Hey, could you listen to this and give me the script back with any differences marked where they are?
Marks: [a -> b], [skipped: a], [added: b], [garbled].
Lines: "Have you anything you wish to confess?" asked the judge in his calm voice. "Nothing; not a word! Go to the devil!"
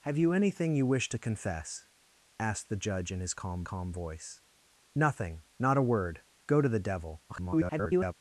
"Have you anything you wish to confess?" asked the judge in his calm [added: calm] voice. "Nothing; not a word! Go to the devil!" [garbled]